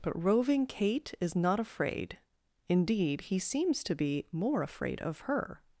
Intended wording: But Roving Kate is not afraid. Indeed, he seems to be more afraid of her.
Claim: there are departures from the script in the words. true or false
false